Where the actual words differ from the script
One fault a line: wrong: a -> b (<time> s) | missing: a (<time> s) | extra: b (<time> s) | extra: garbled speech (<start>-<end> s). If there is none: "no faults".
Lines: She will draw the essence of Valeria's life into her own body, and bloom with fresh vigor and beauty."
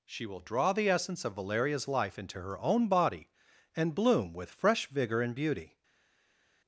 no faults